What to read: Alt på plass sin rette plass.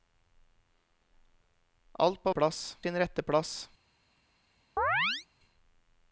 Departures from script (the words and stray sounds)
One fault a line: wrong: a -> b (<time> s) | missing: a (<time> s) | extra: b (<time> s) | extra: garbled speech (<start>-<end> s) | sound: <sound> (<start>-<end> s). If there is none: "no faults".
sound: chirp (4.8-5.3 s)